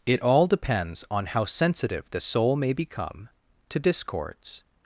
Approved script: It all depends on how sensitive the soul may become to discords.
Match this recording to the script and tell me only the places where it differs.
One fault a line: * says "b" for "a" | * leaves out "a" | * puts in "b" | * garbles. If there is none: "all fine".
all fine